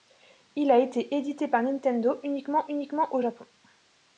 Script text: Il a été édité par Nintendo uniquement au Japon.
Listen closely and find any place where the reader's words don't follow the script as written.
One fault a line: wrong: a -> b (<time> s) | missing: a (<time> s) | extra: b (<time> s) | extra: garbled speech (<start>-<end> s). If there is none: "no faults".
extra: uniquement (2.7 s)